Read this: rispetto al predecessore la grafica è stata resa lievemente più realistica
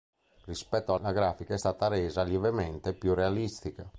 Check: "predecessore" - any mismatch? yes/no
yes